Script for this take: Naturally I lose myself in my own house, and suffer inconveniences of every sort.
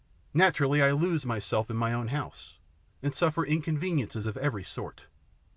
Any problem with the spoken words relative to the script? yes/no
no